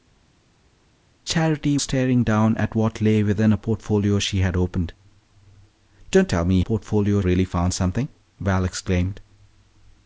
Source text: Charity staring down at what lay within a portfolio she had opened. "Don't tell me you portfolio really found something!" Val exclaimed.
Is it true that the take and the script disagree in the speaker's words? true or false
false